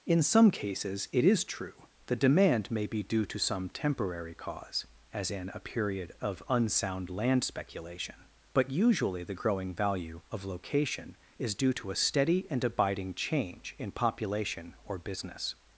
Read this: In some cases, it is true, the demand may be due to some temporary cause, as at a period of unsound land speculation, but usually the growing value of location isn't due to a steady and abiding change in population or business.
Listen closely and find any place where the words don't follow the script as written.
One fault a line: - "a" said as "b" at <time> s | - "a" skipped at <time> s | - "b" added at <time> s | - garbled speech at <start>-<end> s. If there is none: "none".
- "at" said as "in" at 5.3 s
- "isn't" said as "is" at 11.4 s